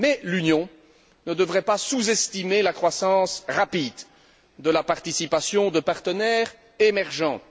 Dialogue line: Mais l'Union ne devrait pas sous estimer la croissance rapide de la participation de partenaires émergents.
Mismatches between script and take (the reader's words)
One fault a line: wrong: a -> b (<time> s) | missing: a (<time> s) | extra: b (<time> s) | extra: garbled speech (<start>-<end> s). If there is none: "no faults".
no faults